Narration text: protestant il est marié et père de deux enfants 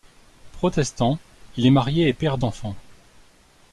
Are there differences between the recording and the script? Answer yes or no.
yes